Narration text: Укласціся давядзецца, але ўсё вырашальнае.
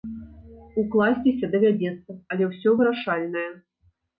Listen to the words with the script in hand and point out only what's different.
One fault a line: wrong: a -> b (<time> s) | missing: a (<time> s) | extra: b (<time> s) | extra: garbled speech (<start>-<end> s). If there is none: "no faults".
no faults